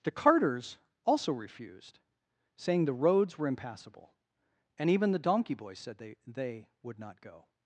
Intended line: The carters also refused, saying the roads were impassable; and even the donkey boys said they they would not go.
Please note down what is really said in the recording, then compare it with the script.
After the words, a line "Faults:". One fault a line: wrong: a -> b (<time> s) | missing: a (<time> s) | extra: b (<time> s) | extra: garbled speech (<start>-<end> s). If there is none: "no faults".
The carters also refused, saying the roads were impassable; and even the donkey boys said they they would not go.
Faults:
no faults